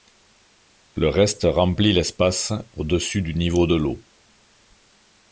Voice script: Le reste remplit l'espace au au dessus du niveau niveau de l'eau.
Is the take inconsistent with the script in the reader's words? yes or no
yes